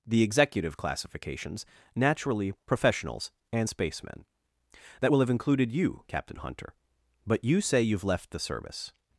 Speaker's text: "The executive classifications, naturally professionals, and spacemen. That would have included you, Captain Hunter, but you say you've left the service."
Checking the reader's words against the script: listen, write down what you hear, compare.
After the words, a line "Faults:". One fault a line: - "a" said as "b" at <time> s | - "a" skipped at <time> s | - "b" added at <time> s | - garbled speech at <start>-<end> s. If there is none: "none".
"The executive classifications, naturally professionals, and spacemen. That will have included you, Captain Hunter, but you say you've left the service."
Faults:
- "would" said as "will" at 5.1 s